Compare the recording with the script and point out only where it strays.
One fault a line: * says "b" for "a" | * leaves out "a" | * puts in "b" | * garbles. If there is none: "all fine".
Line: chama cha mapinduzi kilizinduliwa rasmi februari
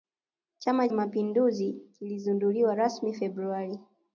* leaves out "cha"